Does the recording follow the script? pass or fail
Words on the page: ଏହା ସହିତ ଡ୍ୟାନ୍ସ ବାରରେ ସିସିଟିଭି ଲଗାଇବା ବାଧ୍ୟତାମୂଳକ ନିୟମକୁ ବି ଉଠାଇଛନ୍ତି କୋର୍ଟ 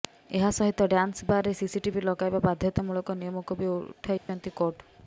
pass